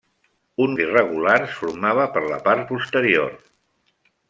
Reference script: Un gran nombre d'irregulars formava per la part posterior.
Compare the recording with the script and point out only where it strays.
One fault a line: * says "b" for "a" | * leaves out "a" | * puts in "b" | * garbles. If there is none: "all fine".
* leaves out "gran nombre"